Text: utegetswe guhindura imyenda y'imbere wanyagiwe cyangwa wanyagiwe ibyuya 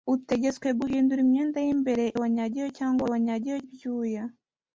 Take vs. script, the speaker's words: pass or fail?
pass